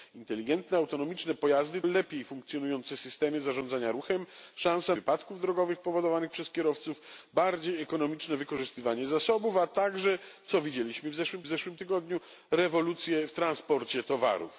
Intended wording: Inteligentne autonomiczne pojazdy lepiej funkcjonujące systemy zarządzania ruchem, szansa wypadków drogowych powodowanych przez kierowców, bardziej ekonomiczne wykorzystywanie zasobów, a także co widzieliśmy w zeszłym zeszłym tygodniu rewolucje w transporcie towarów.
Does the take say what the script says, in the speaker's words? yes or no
yes